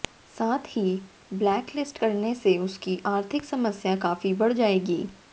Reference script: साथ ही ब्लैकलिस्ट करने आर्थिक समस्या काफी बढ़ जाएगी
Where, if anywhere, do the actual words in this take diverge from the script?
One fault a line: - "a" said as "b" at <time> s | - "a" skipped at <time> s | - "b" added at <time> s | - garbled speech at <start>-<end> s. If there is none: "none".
- "से उसकी" added at 2.4 s